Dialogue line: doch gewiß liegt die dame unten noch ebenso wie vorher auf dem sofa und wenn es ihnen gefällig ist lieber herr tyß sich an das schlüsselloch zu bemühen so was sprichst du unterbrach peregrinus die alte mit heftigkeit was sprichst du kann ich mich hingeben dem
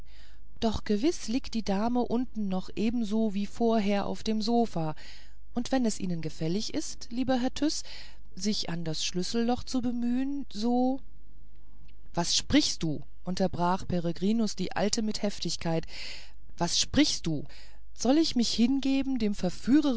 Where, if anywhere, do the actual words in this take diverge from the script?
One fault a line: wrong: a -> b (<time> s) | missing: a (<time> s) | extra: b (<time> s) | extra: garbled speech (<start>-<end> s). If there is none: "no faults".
wrong: kann -> soll (17.9 s)